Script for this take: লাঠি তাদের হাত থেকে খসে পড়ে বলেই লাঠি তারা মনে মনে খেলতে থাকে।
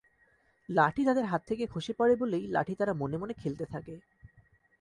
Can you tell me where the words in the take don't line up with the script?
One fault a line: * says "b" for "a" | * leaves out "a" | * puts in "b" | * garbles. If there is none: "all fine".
all fine